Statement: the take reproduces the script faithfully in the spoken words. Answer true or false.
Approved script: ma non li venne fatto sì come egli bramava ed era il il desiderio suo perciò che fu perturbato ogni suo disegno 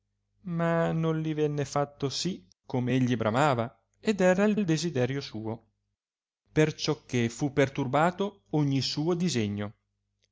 true